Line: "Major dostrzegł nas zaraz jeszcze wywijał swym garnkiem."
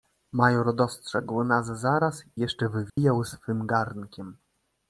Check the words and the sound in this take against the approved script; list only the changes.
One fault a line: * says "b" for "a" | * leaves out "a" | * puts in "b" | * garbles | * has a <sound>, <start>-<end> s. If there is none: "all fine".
* has a dropout, 2.9-3.0 s